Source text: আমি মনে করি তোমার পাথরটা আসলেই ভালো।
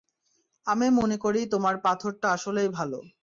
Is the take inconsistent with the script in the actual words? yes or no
no